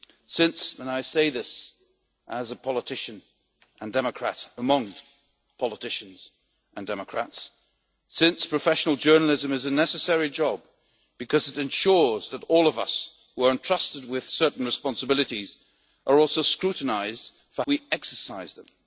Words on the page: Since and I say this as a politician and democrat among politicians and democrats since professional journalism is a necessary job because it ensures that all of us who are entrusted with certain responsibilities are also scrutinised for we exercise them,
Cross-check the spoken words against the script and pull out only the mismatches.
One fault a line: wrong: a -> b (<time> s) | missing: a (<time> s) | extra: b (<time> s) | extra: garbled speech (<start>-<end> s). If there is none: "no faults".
no faults